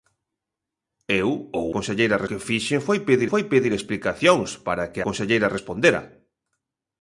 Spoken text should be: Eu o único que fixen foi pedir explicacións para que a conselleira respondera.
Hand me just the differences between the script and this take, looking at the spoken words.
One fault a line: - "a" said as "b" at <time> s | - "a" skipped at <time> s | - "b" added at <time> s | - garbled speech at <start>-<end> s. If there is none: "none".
- "único" said as "conselleira" at 1.7 s
- "foi pedir" added at 3.3 s
- "a" skipped at 5.0 s